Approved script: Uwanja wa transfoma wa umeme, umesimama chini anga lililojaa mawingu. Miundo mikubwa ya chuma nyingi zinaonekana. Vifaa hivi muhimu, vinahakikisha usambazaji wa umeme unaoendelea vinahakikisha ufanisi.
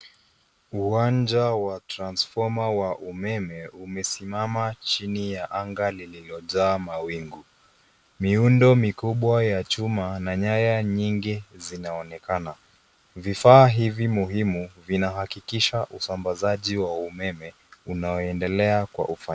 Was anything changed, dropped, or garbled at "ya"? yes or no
no